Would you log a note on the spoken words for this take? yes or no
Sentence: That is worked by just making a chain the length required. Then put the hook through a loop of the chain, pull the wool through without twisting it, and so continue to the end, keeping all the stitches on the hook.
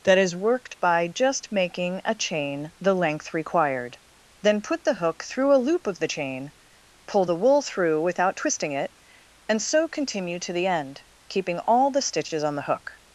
no